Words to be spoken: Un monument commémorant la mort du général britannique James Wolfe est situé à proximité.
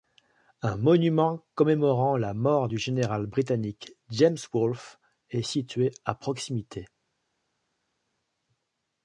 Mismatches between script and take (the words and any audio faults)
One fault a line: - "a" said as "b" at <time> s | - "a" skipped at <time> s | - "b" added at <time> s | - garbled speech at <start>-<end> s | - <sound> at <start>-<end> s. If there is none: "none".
none